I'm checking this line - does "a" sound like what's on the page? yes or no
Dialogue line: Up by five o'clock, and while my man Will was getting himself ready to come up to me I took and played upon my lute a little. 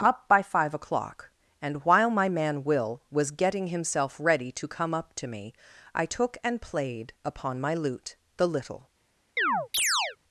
no